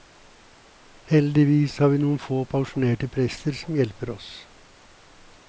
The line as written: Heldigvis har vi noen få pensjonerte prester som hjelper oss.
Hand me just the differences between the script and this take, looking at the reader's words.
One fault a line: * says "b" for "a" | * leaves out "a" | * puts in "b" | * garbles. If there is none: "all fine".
all fine